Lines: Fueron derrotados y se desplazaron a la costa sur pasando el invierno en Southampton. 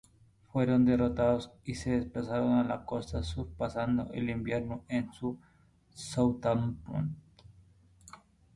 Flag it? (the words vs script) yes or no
no